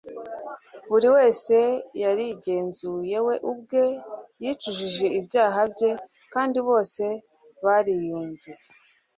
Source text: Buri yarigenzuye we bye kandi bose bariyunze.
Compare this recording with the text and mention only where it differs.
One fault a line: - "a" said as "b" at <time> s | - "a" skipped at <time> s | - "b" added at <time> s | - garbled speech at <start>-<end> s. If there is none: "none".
- "wese" added at 1.1 s
- "ubwe yicujije ibyaha" added at 3.5 s